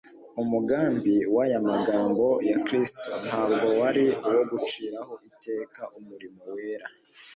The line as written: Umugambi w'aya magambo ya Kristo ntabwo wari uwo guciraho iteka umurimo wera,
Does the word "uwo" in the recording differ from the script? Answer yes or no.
no